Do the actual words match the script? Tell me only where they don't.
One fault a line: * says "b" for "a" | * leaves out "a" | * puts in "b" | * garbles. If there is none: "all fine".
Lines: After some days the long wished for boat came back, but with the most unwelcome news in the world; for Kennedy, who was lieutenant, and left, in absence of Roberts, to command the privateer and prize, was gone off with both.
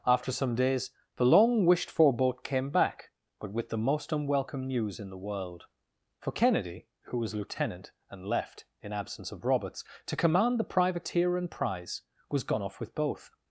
all fine